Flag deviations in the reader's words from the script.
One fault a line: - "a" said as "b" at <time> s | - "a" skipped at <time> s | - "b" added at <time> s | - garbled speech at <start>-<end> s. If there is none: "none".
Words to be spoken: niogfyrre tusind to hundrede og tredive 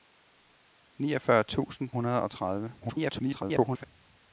- "to" skipped at 1.9 s
- garbled speech at 2.8-3.8 s